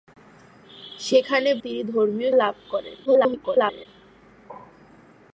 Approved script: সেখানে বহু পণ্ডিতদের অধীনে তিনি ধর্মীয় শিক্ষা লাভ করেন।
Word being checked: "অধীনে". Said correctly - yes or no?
no